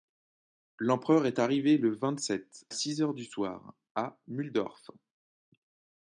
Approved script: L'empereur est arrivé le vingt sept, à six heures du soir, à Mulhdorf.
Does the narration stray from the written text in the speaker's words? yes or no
yes